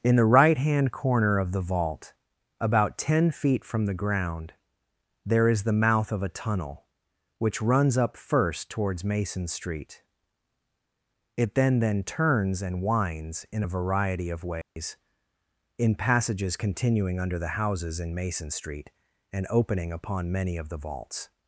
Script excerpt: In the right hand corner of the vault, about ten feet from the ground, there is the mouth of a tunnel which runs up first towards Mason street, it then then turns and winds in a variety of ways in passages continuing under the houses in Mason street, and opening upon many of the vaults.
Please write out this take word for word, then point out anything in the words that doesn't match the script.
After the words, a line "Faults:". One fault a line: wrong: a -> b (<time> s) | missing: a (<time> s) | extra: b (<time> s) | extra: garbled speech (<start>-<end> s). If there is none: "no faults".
In the right hand corner of the vault, about ten feet from the ground, there is the mouth of a tunnel which runs up first towards Mason street, it then then turns and winds in a variety of ways in passages continuing under the houses in Mason street, and opening upon many of the vaults.
Faults:
no faults